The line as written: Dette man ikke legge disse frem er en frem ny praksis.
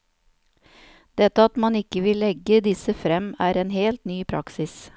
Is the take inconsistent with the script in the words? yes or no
yes